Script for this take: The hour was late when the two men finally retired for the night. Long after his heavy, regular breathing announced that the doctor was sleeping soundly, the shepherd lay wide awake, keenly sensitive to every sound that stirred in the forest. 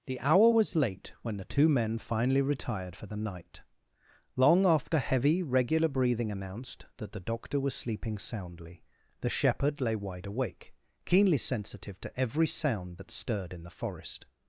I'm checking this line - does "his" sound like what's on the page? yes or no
no